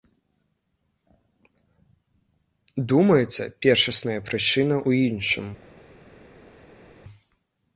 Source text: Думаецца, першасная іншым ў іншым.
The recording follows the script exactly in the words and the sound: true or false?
false